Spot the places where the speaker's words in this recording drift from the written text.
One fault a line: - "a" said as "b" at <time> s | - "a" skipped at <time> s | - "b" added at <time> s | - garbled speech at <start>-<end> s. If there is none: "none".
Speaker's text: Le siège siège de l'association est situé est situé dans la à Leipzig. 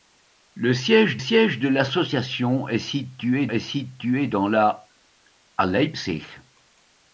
none